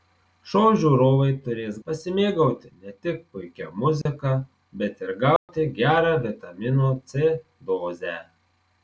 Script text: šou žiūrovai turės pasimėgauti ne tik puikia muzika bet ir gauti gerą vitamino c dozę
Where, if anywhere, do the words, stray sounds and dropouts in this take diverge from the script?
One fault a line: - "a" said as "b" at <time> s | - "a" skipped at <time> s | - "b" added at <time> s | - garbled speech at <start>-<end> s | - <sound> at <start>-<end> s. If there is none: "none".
- dropout at 4.0-4.1 s
- dropout at 5.4-5.5 s